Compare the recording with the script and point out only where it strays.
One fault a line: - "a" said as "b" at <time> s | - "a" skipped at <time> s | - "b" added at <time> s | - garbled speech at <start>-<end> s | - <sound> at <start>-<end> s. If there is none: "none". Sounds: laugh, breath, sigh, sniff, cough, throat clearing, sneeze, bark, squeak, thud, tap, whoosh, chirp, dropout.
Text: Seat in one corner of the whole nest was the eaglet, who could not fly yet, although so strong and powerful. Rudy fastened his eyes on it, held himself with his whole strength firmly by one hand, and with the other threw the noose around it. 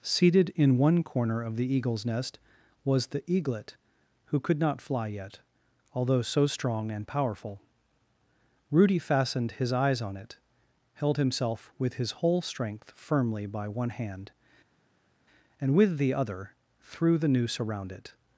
- "Seat" said as "Seated" at 0.0 s
- "whole" said as "eagle's" at 1.8 s